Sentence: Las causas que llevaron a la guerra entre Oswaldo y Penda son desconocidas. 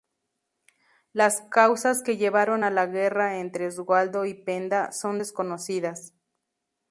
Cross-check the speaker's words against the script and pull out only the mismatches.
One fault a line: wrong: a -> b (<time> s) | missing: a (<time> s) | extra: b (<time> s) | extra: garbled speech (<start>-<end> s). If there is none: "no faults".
no faults